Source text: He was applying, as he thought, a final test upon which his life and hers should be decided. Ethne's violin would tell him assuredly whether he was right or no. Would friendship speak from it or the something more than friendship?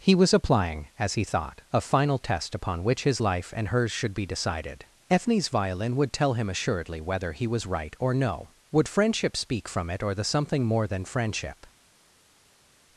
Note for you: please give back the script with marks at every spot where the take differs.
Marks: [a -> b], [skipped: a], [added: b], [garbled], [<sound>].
He was applying, as he thought, a final test upon which his life and hers should be decided. Ethne's violin would tell him assuredly whether he was right or no. Would friendship speak from it or the something more than friendship?